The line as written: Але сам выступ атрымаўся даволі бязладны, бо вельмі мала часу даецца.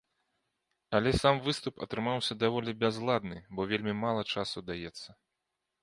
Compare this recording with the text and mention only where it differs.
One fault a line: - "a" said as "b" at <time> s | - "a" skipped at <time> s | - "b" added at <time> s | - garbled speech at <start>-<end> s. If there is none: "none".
none